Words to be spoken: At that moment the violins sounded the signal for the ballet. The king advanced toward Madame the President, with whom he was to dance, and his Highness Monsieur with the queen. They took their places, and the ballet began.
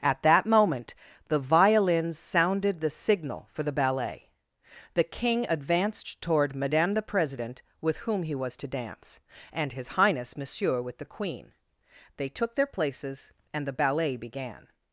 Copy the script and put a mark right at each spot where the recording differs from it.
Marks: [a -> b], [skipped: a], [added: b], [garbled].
At that moment the violins sounded the signal for the ballet. The king advanced toward Madame the President, with whom he was to dance, and his Highness Monsieur with the queen. They took their places, and the ballet began.